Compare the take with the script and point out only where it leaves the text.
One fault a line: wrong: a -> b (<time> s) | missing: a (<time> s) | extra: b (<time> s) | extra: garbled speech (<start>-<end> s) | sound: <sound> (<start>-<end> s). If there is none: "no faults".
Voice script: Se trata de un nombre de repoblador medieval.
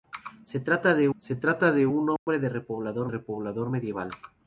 extra: se trata de (1.2 s)
sound: dropout (2.2-2.3 s)
extra: repoblador (3.1 s)